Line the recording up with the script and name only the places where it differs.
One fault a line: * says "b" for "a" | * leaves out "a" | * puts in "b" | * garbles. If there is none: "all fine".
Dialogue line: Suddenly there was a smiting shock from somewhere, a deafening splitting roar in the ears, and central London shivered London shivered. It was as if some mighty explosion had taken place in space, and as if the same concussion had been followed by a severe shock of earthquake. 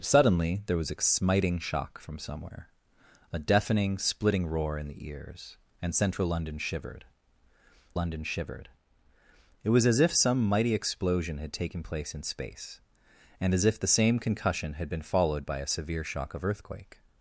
all fine